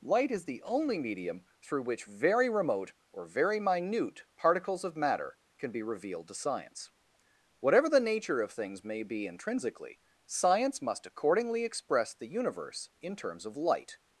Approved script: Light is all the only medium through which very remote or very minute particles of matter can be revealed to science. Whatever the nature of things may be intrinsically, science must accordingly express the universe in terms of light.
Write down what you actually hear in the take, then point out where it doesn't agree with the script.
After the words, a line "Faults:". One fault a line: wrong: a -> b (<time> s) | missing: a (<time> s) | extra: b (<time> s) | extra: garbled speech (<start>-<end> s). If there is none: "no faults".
Light is the only medium through which very remote or very minute particles of matter can be revealed to science. Whatever the nature of things may be intrinsically, science must accordingly express the universe in terms of light.
Faults:
missing: all (0.5 s)